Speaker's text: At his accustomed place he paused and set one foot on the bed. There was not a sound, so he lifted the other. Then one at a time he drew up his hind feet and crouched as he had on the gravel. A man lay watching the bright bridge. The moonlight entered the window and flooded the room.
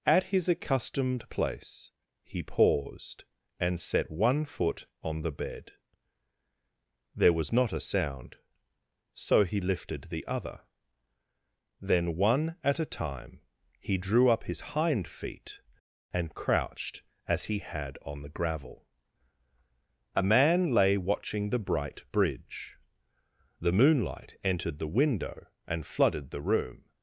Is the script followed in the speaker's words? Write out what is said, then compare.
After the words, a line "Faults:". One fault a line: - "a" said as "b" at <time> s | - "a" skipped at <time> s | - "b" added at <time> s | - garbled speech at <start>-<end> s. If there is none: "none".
At his accustomed place he paused and set one foot on the bed. There was not a sound, so he lifted the other. Then one at a time he drew up his hind feet and crouched as he had on the gravel. A man lay watching the bright bridge. The moonlight entered the window and flooded the room.
Faults:
none